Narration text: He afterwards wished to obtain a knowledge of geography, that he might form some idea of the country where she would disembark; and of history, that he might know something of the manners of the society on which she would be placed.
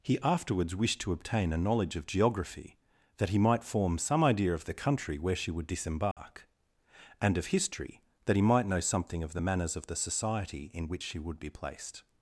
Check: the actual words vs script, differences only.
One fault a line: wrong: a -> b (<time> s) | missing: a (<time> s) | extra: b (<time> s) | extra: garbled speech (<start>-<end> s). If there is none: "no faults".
wrong: on -> in (10.7 s)